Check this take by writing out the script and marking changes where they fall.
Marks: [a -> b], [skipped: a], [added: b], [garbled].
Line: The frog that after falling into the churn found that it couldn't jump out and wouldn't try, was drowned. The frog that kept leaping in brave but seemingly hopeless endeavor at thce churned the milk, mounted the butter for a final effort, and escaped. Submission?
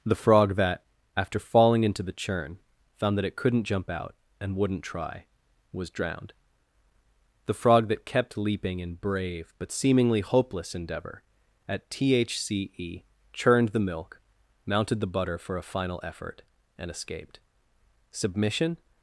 The frog that after falling into the churn found that it couldn't jump out and wouldn't try, was drowned. The frog that kept leaping in brave but seemingly hopeless endeavor at thce churned the milk, mounted the butter for a final effort, and escaped. Submission?